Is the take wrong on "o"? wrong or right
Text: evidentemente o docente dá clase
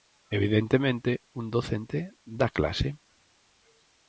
wrong